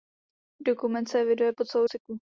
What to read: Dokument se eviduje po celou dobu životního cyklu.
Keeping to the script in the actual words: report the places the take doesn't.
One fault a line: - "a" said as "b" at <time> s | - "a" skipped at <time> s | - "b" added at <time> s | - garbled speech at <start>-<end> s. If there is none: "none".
- "dobu životního" skipped at 1.9 s